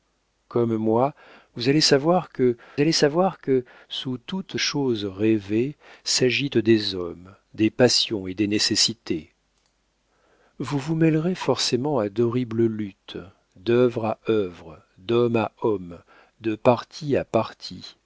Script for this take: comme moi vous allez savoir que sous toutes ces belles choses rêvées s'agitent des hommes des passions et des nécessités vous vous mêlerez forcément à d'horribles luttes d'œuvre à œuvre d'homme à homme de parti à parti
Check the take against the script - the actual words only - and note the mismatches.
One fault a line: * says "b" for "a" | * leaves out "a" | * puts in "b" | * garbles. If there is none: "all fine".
* puts in "allez savoir que"
* leaves out "ces belles"